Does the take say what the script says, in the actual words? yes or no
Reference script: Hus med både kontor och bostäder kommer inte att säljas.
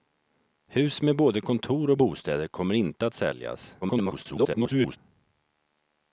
no